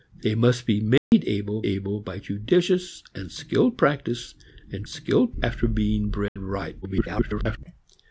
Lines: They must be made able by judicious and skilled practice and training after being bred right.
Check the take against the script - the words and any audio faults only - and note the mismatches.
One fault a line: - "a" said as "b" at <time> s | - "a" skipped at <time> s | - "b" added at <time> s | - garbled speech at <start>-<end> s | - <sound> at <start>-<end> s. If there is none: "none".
- dropout at 1.0-1.1 s
- "able" added at 1.6 s
- "training" said as "skilled" at 4.8 s
- dropout at 6.3-6.4 s
- garbled speech at 6.8-7.6 s